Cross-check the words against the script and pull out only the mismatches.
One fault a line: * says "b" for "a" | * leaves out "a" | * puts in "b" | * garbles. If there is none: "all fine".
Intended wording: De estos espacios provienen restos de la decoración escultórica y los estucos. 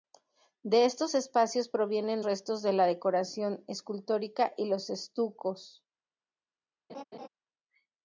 all fine